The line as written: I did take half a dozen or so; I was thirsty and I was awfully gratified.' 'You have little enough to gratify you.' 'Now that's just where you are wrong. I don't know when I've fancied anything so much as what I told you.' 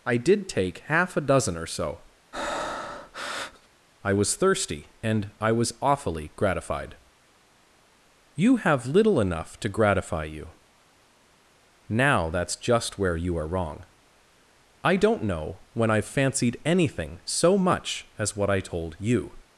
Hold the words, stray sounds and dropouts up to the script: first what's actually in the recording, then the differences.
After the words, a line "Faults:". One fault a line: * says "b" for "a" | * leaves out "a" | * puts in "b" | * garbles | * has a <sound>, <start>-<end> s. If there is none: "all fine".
I did take half a dozen or so; I was thirsty and I was awfully gratified.' 'You have little enough to gratify you.' 'Now that's just where you are wrong. I don't know when I've fancied anything so much as what I told you.'
Faults:
* has a breath, 2.3-3.7 s